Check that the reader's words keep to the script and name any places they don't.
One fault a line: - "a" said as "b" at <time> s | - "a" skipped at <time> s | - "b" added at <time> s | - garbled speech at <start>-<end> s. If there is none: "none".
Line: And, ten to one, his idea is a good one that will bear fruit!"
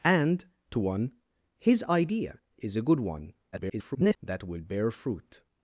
- "ten" skipped at 0.5 s
- garbled speech at 3.5-4.2 s